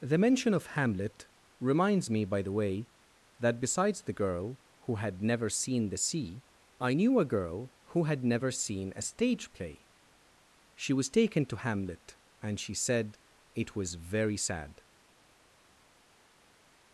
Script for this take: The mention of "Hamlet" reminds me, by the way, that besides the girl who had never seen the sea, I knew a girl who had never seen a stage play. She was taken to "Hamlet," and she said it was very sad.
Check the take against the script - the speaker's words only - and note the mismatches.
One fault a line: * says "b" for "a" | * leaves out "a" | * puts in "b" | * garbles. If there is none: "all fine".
all fine